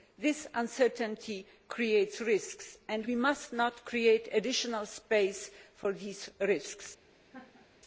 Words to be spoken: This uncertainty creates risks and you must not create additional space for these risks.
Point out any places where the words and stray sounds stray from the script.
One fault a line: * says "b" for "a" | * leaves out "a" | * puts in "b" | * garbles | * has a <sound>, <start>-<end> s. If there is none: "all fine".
* says "we" for "you"
* has a laugh, 7.3-7.7 s